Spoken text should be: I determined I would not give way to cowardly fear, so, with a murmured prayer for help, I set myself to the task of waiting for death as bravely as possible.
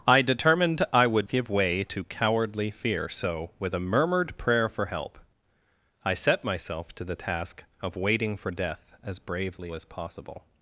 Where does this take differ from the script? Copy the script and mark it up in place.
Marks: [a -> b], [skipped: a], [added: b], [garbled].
I determined I would [skipped: not] give way to cowardly fear, so, with a murmured prayer for help, I set myself to the task of waiting for death as bravely as possible.